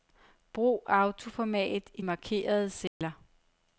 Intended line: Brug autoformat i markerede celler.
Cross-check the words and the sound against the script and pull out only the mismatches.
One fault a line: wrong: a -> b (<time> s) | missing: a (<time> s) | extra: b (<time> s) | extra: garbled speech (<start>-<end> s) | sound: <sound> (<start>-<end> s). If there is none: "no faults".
sound: dropout (2.9-3.0 s)